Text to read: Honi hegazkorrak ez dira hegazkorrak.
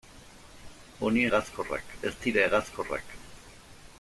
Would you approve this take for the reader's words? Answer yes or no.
yes